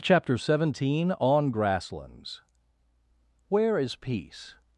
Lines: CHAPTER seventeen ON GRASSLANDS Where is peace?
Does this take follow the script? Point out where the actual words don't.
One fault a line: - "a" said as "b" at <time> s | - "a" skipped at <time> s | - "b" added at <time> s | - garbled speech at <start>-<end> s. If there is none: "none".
none